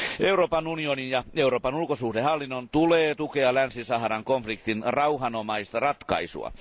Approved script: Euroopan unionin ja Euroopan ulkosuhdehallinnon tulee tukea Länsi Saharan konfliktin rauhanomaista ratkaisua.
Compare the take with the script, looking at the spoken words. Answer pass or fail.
pass